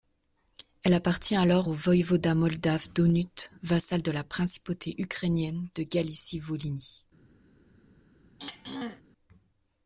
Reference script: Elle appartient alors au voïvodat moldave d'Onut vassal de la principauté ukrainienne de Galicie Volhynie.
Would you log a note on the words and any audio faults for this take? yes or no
yes